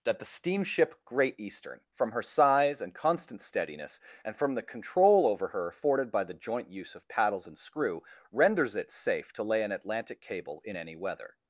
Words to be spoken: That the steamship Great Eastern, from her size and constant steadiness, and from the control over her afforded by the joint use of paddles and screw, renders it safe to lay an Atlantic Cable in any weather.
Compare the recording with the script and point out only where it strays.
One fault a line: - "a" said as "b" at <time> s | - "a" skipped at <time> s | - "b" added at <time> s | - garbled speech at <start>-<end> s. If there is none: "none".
none